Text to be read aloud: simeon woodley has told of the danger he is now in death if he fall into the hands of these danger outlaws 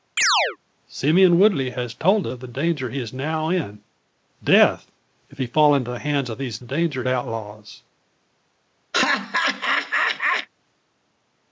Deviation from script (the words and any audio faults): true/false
true